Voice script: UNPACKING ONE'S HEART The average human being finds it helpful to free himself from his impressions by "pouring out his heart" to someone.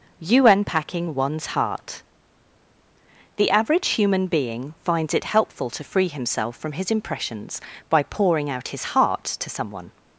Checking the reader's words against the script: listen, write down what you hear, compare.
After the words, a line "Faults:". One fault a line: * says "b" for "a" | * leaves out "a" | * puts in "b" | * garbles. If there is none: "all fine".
you UNPACKING ONE'S HEART The average human being finds it helpful to free himself from his impressions by "pouring out his heart" to someone.
Faults:
* puts in "you"